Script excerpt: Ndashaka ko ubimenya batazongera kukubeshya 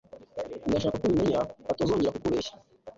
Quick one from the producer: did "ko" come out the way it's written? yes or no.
yes